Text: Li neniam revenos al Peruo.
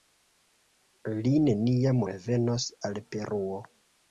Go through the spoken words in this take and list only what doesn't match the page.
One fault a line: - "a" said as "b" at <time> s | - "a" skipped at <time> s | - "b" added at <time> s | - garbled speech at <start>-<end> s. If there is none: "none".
none